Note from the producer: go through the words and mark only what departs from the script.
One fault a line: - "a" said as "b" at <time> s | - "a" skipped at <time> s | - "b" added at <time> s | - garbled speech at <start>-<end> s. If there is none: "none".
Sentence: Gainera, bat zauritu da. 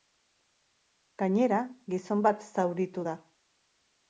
- "gizon" added at 2.0 s